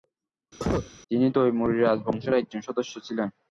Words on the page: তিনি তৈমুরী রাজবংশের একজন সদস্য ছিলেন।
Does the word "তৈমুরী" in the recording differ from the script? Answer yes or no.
no